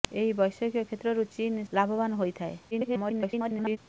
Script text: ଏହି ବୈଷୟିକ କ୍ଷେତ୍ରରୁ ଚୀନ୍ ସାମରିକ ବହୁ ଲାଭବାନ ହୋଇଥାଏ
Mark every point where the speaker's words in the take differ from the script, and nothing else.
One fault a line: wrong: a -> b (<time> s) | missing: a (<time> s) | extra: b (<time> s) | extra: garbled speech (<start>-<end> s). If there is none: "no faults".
missing: ସାମରିକ ବହୁ (1.6 s)
extra: garbled speech (2.7-3.8 s)